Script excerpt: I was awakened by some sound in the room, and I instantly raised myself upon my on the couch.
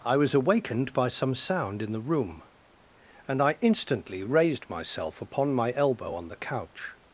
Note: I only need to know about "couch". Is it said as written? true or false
true